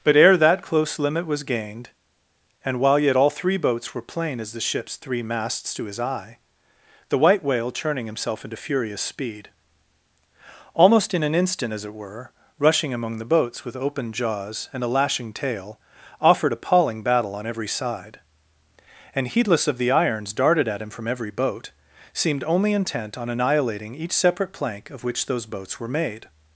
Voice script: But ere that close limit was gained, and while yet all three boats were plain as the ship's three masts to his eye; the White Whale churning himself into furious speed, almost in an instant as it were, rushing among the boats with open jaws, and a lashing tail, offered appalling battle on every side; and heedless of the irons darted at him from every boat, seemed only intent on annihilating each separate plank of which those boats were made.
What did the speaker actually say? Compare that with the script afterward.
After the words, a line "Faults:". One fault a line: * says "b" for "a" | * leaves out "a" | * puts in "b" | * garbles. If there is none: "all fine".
But ere that close limit was gained, and while yet all three boats were plain as the ship's three masts to his eye; the White Whale churning himself into furious speed, almost in an instant as it were, rushing among the boats with open jaws, and a lashing tail, offered appalling battle on every side; and heedless of the irons darted at him from every boat, seemed only intent on annihilating each separate plank of which those boats were made.
Faults:
all fine